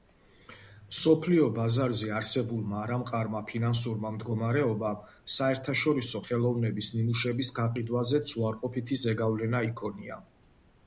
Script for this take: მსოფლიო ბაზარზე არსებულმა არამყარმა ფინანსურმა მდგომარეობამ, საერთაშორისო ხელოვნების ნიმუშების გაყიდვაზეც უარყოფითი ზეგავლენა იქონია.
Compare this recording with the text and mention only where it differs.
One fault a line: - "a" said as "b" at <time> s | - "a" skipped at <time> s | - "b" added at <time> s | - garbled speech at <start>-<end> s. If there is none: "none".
none